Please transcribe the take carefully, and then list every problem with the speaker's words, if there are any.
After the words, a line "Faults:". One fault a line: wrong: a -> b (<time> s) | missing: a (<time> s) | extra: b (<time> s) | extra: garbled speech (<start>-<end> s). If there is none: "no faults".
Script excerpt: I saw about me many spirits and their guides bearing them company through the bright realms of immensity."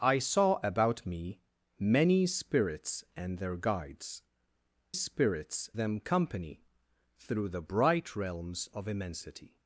I saw about me many spirits and their guides spirits them company through the bright realms of immensity."
Faults:
wrong: bearing -> spirits (4.9 s)